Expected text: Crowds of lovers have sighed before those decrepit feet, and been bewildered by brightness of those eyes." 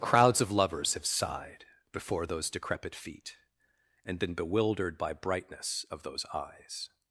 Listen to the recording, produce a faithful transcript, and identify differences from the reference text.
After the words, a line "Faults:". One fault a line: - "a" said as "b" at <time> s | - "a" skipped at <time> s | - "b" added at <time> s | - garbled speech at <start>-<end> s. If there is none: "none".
Crowds of lovers have sighed before those decrepit feet, and been bewildered by brightness of those eyes."
Faults:
none